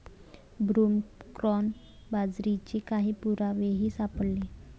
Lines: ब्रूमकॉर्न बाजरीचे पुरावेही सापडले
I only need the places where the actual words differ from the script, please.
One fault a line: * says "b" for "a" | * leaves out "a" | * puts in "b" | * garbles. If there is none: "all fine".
* puts in "काही"